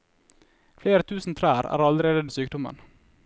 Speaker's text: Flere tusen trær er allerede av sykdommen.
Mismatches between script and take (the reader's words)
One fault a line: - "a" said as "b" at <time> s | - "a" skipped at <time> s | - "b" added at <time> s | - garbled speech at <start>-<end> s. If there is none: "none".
none